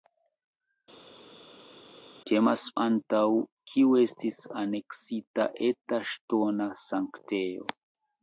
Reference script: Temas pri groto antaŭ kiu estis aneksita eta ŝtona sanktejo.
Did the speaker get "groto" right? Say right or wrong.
wrong